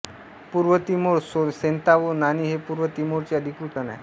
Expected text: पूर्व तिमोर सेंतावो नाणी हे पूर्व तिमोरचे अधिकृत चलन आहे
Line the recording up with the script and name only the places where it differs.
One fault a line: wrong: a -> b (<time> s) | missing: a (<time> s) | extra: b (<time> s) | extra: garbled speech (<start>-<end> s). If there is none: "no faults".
missing: चलन (3.8 s)